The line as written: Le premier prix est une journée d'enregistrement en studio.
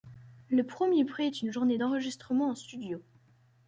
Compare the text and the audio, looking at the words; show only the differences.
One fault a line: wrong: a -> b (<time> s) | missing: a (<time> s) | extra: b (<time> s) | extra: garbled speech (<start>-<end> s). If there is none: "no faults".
no faults